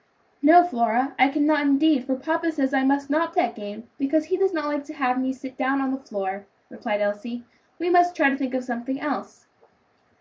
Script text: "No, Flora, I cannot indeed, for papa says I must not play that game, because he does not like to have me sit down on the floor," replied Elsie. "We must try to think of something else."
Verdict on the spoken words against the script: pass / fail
fail